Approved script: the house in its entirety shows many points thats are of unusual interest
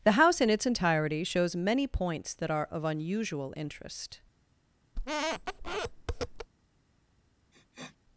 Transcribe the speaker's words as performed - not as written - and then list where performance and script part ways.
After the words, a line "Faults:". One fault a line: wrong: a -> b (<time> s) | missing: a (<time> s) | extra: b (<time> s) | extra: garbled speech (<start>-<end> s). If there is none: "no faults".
the house in its entirety shows many points that are of unusual interest
Faults:
wrong: thats -> that (2.3 s)